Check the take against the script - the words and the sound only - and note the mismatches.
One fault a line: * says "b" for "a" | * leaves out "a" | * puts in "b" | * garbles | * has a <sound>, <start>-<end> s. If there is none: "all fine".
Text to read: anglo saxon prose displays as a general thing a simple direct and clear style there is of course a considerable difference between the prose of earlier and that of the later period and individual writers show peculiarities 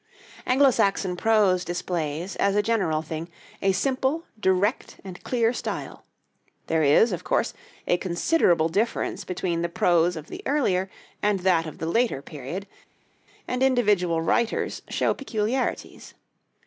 * puts in "the"